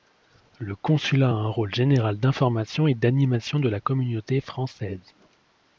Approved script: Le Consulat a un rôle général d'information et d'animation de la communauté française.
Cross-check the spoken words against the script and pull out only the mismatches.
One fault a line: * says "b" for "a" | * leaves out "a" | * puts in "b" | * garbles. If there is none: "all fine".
all fine